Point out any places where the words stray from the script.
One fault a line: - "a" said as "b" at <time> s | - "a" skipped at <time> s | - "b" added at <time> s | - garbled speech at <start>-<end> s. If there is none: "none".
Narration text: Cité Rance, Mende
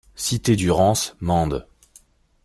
- "du" added at 0.5 s